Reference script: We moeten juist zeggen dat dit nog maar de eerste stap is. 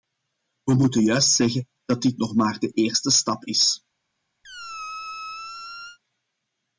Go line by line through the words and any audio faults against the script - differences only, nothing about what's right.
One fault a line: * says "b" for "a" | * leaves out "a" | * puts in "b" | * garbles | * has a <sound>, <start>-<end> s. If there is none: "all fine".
* has a squeak, 4.4-6.0 s